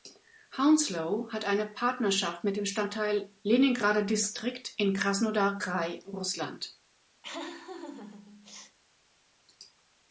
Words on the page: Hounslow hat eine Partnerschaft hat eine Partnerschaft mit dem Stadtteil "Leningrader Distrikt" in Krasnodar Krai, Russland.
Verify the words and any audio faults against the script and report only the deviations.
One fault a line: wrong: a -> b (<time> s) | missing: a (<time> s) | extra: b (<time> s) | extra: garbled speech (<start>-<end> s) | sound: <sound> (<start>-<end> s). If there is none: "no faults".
missing: hat eine Partnerschaft (2.4 s)
sound: laugh (7.2-8.8 s)